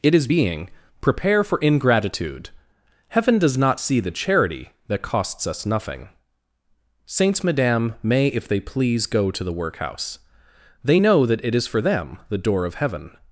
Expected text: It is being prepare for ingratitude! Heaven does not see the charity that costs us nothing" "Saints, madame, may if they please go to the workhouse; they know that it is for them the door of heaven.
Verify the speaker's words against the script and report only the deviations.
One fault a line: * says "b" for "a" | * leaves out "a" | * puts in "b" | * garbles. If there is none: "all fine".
all fine